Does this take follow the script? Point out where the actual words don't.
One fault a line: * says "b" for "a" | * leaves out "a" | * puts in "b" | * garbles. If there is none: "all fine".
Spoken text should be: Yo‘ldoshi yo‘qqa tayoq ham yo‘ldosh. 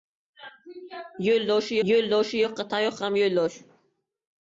* puts in "yo‘ldoshi"